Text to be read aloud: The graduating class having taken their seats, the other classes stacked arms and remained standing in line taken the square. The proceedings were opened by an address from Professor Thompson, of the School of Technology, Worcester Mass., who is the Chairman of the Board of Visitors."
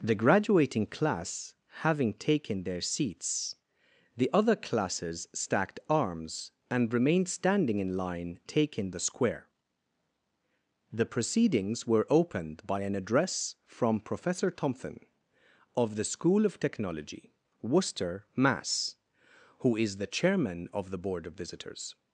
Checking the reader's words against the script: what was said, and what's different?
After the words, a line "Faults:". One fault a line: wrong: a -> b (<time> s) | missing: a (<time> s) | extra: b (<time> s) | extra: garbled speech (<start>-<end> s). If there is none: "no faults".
The graduating class having taken their seats, the other classes stacked arms and remained standing in line taken the square. The proceedings were opened by an address from Professor Thompson, of the School of Technology, Worcester Mass., who is the Chairman of the Board of Visitors."
Faults:
no faults